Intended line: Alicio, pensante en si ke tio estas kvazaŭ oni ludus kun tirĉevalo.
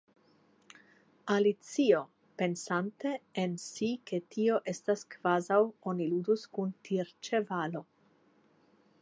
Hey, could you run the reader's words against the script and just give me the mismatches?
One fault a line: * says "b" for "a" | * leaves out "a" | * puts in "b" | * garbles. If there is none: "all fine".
all fine